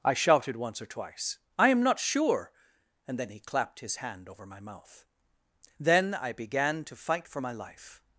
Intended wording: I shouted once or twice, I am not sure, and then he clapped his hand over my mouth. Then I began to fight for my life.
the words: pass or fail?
pass